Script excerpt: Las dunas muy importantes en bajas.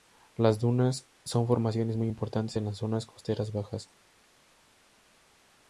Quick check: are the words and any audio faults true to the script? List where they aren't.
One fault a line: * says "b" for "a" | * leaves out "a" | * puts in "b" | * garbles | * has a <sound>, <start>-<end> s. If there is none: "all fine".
* puts in "son formaciones"
* puts in "las zonas costeras"